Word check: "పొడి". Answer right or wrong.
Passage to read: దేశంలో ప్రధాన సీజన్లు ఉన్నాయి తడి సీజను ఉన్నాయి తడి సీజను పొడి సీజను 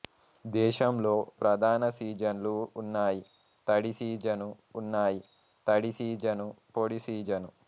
right